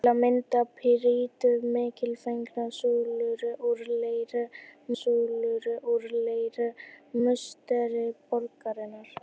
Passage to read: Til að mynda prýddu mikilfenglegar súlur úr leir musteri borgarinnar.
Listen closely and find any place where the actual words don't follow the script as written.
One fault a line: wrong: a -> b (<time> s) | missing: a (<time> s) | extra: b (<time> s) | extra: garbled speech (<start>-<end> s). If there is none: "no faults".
extra: súlur úr leir (5.0 s)